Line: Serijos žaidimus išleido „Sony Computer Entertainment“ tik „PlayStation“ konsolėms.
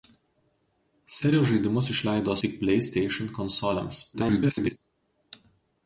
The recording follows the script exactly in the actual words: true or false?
false